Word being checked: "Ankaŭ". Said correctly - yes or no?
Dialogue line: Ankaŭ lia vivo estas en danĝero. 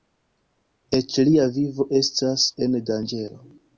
no